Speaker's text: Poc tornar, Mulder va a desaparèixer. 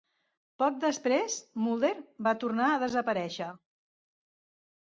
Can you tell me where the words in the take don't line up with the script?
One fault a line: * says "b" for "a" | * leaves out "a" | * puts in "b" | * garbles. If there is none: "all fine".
* says "després" for "tornar"
* puts in "tornar"